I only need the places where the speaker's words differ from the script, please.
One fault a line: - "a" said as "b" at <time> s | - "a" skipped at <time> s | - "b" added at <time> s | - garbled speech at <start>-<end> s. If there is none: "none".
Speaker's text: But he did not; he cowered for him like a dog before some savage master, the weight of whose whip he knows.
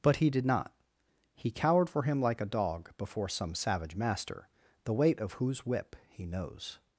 none